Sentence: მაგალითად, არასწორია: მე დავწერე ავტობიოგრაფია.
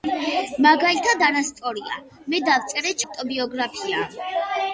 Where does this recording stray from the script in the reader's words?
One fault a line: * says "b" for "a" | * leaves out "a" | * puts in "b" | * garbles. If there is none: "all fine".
all fine